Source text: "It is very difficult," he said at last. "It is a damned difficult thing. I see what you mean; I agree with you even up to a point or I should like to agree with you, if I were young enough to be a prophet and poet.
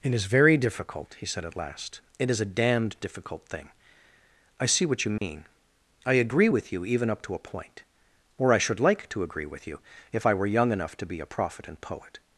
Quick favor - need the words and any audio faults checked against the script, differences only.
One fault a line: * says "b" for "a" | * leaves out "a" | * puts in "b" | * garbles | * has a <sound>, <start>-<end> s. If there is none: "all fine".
* has a dropout, 5.2-5.2 s